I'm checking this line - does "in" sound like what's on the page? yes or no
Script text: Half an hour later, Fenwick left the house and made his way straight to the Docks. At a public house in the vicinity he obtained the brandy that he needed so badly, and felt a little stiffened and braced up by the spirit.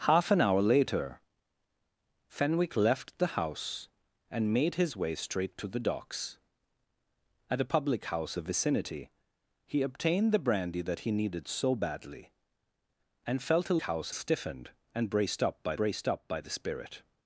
no